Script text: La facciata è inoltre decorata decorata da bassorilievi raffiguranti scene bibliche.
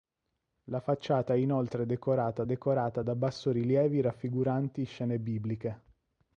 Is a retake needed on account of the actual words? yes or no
no